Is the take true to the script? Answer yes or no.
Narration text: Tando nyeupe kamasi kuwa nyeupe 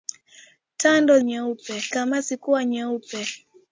yes